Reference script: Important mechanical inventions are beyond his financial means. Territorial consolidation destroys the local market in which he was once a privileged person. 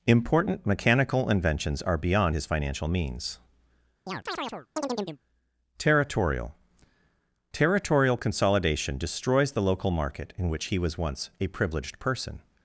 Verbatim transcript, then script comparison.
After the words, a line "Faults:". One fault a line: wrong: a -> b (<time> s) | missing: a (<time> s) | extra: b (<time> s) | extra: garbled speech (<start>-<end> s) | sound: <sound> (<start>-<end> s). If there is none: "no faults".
Important mechanical inventions are beyond his financial means. Territorial Territorial consolidation destroys the local market in which he was once a privileged person.
Faults:
sound: chirp (4.1-5.2 s)
extra: Territorial (7.5 s)